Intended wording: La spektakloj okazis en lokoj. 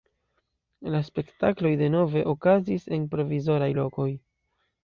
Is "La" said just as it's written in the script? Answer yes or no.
yes